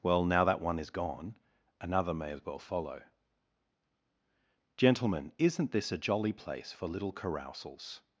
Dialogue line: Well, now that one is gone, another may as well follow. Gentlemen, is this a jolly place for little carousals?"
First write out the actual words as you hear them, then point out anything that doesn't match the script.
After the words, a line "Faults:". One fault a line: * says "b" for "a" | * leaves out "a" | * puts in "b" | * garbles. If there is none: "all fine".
Well, now that one is gone, another may as well follow. Gentlemen, isn't this a jolly place for little carousals?"
Faults:
* says "isn't" for "is"